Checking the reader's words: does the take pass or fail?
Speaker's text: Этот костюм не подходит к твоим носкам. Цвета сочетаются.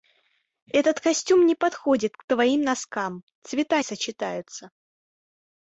pass